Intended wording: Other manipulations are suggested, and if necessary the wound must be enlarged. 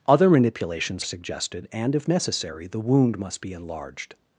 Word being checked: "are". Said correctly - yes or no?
no